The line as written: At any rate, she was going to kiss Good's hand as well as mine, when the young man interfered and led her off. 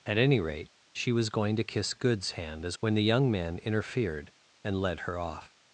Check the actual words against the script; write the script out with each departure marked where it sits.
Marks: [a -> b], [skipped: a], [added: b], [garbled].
At any rate, she was going to kiss Good's hand as [skipped: well as mine,] when the young man interfered and led her off.